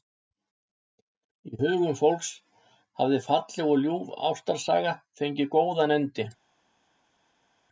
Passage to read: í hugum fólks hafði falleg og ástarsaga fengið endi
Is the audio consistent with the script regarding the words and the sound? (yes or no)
no